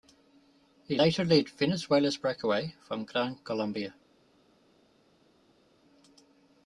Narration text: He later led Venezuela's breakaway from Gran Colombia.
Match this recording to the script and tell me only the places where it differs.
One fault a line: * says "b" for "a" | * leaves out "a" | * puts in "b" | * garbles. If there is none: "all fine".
all fine